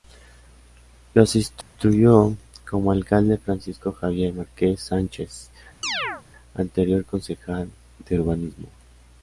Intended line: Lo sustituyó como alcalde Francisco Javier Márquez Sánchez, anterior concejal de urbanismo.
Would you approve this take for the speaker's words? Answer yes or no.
yes